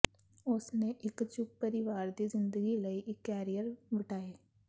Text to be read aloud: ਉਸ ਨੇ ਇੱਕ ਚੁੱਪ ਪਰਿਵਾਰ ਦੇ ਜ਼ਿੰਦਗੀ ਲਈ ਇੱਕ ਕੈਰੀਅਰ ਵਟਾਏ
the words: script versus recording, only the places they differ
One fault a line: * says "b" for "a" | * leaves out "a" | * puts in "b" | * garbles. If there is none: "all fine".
* says "ਦੀ" for "ਦੇ"